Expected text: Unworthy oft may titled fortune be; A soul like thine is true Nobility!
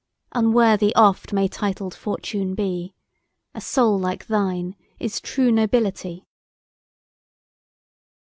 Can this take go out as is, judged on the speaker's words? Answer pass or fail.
pass